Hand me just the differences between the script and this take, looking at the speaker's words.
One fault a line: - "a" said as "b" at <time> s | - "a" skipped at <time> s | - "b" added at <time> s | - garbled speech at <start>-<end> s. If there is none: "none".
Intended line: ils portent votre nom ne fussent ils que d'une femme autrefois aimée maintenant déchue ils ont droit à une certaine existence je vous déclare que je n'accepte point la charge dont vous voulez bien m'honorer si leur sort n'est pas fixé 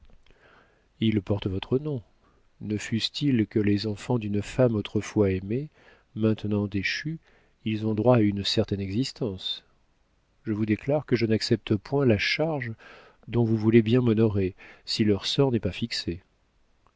- "les enfants" added at 3.6 s